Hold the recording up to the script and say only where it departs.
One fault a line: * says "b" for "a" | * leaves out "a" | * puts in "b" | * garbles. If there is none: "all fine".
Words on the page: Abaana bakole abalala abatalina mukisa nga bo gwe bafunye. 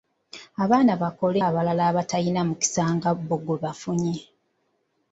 all fine